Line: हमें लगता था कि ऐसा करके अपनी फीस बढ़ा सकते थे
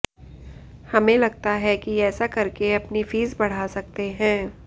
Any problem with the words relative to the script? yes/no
yes